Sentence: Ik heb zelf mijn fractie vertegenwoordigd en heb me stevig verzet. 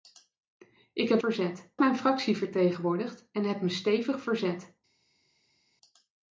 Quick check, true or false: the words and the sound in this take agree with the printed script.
false